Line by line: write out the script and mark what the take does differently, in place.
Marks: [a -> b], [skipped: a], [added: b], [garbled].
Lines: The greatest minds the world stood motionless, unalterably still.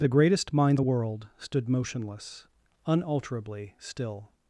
The greatest minds the world stood motionless, unalterably still.